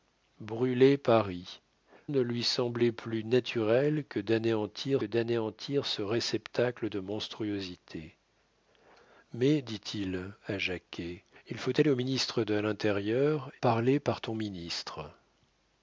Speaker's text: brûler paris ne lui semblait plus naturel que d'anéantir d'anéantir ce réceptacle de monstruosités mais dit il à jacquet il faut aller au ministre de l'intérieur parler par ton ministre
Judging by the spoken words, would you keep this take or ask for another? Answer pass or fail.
pass